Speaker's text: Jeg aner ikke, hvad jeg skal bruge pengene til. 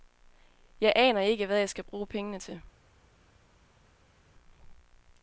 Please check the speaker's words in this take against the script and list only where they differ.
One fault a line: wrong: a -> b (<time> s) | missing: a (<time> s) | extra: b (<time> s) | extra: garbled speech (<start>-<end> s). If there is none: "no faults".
no faults